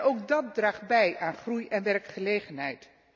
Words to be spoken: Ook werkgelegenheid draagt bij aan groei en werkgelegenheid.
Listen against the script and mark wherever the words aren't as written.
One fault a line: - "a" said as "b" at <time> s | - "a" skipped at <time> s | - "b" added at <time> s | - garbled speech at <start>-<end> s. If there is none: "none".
- "werkgelegenheid" said as "dat" at 0.3 s